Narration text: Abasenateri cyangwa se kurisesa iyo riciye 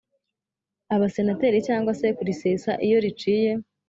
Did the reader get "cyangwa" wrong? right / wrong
right